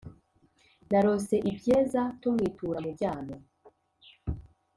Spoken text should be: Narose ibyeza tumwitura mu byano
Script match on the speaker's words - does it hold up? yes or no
yes